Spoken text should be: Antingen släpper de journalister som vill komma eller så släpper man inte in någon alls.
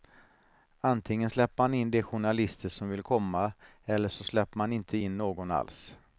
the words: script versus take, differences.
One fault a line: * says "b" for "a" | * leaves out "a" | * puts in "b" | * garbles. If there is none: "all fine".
* puts in "man in"